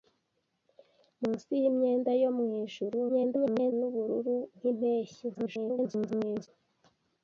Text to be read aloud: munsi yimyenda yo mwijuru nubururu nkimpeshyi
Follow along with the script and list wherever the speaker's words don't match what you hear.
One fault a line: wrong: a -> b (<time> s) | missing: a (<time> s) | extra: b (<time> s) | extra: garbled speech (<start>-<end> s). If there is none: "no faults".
extra: garbled speech (3.1-3.7 s)
extra: garbled speech (5.3-6.5 s)